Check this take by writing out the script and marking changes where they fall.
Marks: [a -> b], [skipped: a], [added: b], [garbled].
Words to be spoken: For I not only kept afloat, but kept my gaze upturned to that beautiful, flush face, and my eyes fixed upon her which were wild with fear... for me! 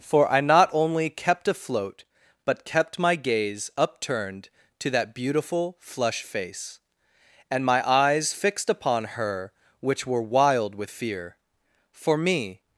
For I not only kept afloat, but kept my gaze upturned to that beautiful, flush face, and my eyes fixed upon her which were wild with fear... for me!